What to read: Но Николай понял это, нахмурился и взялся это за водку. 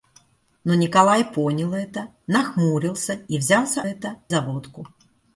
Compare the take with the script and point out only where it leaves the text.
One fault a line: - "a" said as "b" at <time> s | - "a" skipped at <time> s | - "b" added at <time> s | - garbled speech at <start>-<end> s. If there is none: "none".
none